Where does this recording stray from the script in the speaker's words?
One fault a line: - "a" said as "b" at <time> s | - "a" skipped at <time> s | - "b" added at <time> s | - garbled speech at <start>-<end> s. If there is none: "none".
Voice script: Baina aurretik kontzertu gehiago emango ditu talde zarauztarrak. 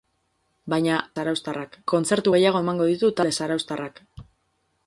- "aurretik" said as "zarauztarrak" at 1.2 s